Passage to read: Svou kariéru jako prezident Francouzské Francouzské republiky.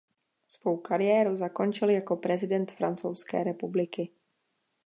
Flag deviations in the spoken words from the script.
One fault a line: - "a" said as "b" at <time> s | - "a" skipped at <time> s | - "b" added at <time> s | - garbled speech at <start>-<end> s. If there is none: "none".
- "zakončil" added at 1.4 s
- "Francouzské" skipped at 3.4 s